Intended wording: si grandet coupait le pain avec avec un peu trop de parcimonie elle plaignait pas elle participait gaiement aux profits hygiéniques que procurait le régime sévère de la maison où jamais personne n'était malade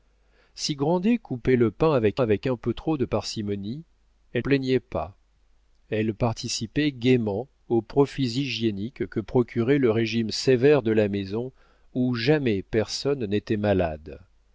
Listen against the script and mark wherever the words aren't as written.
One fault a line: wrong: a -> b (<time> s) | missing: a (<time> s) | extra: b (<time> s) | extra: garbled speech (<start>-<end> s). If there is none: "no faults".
no faults